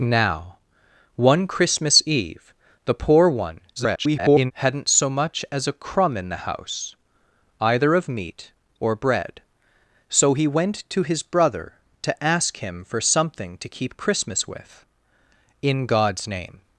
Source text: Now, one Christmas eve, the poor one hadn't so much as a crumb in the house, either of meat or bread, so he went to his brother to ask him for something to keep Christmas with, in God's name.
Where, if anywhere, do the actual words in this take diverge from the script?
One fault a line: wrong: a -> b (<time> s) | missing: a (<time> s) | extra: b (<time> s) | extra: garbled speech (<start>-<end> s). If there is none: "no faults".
extra: garbled speech (3.8-4.5 s)